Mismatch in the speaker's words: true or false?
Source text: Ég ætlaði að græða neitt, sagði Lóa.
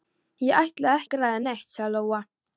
false